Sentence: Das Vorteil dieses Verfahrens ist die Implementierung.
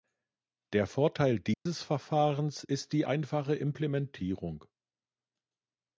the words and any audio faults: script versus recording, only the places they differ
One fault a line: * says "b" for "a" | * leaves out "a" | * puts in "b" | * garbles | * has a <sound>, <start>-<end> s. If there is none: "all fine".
* says "Der" for "Das"
* has a dropout, 1.5-1.7 s
* puts in "einfache"